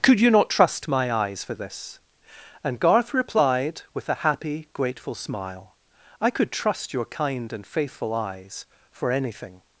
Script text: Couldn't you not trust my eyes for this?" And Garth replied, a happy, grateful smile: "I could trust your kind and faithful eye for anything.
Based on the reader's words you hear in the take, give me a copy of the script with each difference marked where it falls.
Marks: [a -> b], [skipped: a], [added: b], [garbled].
[Couldn't -> Could] you not trust my eyes for this?" And Garth replied, [added: with] a happy, grateful smile: "I could trust your kind and faithful [eye -> eyes] for anything.